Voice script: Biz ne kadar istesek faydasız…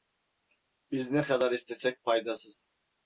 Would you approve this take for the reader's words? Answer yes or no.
yes